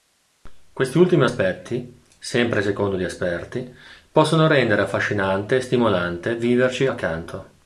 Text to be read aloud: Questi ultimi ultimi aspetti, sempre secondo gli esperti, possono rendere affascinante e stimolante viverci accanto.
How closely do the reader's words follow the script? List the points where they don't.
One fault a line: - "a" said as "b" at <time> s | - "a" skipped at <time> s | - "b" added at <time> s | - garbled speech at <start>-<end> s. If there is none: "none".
- "ultimi" skipped at 1.2 s